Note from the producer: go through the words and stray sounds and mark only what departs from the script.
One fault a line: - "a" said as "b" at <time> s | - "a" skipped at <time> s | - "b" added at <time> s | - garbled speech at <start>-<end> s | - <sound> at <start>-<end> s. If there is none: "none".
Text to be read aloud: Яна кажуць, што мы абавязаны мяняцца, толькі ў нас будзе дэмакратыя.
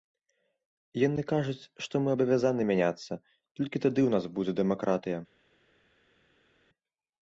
- "Яна" said as "Яны" at 1.1 s
- "тады" added at 3.9 s